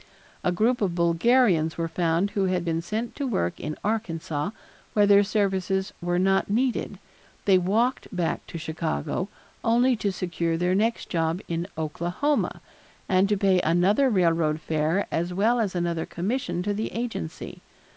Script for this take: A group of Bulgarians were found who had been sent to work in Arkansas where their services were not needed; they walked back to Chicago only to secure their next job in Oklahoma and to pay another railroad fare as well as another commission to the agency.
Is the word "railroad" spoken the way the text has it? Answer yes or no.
yes